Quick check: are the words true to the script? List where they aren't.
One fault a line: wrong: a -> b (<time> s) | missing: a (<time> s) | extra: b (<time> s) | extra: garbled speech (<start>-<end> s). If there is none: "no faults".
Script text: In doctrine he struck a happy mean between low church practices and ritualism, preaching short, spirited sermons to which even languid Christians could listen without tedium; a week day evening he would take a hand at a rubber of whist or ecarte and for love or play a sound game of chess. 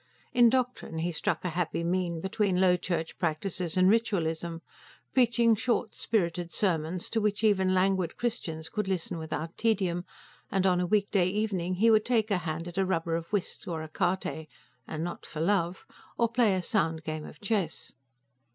extra: and on (10.5 s)
extra: not (15.0 s)